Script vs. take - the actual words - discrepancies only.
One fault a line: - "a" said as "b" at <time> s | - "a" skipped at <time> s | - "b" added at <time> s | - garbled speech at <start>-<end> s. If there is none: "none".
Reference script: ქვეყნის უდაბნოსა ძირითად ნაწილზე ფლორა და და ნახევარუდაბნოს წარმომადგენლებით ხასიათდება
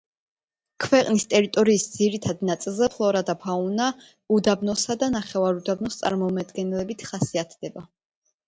- "უდაბნოსა" said as "ტერიტორიის" at 1.3 s
- "ფაუნა უდაბნოსა" added at 3.4 s